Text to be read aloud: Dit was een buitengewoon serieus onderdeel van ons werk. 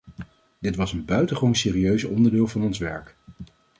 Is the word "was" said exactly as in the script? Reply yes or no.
yes